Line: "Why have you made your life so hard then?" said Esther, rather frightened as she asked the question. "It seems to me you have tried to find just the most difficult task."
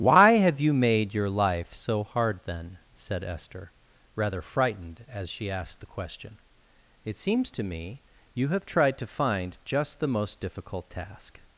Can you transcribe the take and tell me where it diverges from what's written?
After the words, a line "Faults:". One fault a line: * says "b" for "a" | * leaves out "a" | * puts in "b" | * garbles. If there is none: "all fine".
"Why have you made your life so hard then?" said Esther, rather frightened as she asked the question. "It seems to me you have tried to find just the most difficult task."
Faults:
all fine